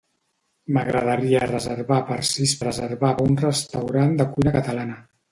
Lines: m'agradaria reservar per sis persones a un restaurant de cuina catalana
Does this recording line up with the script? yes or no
no